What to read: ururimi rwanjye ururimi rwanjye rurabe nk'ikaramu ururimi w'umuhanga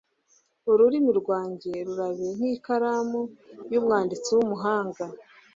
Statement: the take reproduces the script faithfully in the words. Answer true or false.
false